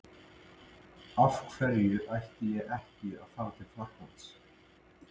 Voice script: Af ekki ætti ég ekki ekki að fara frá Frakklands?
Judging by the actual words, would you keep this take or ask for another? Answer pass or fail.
fail